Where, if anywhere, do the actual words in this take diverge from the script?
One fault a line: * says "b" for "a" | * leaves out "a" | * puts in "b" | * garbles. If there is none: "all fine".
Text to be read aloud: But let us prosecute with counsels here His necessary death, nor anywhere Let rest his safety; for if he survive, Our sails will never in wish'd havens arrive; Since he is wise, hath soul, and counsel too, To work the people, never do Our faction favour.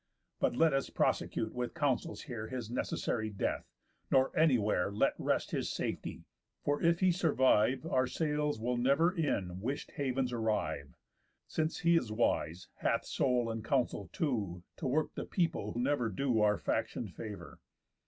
all fine